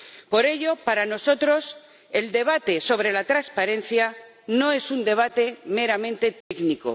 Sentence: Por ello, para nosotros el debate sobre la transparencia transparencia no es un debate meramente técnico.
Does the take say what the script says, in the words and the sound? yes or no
no